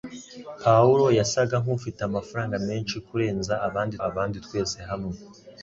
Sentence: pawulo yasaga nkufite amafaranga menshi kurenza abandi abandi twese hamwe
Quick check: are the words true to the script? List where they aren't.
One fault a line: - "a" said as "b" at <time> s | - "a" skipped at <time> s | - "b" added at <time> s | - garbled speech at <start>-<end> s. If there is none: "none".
none